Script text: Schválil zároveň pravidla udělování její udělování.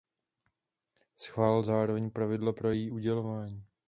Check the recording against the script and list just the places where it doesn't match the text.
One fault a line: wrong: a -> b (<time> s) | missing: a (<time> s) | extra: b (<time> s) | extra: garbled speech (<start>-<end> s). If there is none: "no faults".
wrong: udělování -> pro (2.5 s)